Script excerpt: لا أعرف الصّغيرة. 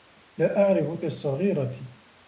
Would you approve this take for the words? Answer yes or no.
yes